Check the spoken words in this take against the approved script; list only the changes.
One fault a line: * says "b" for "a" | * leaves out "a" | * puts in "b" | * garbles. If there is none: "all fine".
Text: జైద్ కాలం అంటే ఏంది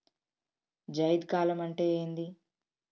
all fine